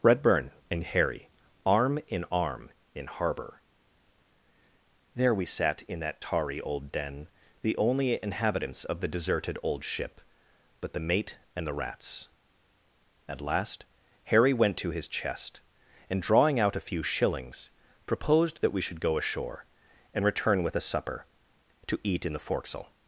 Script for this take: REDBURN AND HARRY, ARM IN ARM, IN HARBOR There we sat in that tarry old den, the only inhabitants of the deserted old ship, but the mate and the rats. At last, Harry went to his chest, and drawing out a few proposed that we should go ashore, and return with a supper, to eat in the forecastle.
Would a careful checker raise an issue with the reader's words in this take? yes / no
yes